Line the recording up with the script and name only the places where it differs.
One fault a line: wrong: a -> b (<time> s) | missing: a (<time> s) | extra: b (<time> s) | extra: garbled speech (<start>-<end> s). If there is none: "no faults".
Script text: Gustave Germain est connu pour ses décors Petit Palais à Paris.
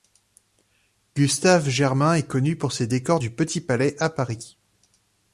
extra: du (3.2 s)